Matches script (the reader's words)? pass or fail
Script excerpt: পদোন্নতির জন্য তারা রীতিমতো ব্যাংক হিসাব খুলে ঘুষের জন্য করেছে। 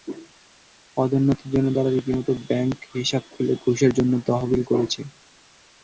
fail